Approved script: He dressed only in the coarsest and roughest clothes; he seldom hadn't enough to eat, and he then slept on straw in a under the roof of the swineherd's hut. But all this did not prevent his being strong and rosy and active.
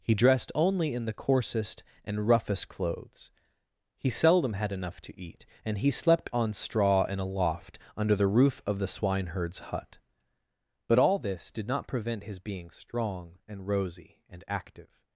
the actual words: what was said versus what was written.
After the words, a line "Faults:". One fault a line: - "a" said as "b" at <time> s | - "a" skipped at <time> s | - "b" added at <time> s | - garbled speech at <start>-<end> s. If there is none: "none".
He dressed only in the coarsest and roughest clothes; he seldom had enough to eat, and he slept on straw in a loft under the roof of the swineherd's hut. But all this did not prevent his being strong and rosy and active.
Faults:
- "hadn't" said as "had" at 4.5 s
- "then" skipped at 5.9 s
- "loft" added at 7.2 s